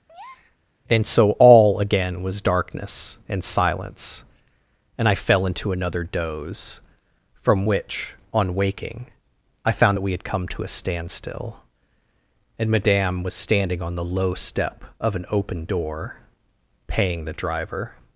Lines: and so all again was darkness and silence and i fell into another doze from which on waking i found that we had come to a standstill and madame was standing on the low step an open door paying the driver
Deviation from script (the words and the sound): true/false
true